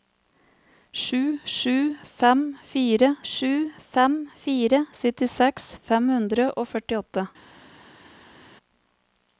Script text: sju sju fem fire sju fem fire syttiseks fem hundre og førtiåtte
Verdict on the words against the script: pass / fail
pass